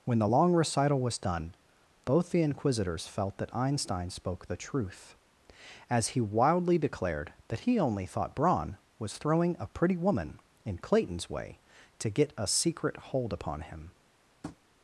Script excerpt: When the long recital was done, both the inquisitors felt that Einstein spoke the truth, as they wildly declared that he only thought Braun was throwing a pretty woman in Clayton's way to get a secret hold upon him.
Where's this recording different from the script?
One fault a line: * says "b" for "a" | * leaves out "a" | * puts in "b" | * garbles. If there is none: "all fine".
* says "he" for "they"